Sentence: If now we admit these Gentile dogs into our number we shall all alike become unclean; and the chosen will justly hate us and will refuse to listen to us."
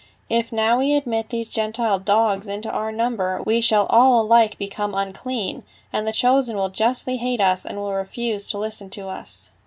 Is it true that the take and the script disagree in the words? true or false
false